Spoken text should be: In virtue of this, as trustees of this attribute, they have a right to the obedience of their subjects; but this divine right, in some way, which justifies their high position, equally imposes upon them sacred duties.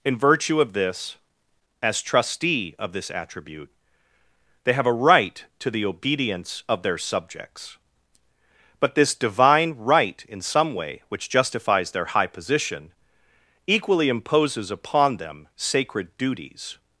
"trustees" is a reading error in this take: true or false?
true